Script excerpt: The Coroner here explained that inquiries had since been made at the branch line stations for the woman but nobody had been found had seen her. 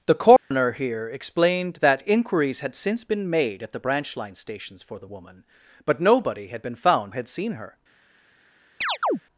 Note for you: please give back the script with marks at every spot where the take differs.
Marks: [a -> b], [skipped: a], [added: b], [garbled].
The Coroner here explained that inquiries had since been made at the branch line stations for the woman but nobody had been found had seen her.